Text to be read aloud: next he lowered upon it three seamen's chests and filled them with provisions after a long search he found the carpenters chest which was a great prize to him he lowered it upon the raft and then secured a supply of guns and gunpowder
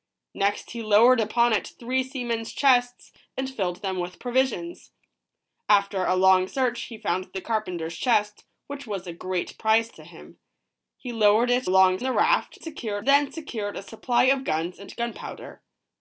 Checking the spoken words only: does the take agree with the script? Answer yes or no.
no